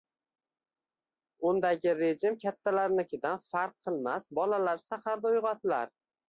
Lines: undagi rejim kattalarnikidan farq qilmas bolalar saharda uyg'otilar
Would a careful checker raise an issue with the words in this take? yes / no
no